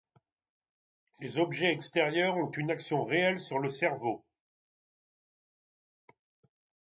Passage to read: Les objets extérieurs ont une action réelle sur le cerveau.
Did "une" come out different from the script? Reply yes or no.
no